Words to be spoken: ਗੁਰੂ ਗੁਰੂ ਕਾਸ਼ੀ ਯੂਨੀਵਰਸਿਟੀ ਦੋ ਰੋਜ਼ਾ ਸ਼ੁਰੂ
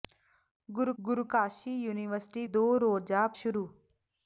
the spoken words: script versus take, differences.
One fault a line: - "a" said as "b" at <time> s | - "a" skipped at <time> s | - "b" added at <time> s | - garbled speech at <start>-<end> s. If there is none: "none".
none